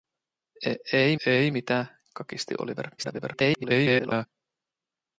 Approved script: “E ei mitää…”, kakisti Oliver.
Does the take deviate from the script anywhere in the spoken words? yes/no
yes